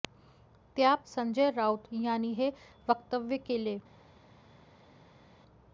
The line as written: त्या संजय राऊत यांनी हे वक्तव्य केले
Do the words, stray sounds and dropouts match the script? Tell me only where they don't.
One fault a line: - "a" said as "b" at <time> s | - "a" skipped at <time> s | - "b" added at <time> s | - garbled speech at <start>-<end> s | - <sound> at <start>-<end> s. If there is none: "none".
none